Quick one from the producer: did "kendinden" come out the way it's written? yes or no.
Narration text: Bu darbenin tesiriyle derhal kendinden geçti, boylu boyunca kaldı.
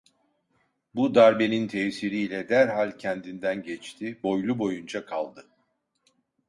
yes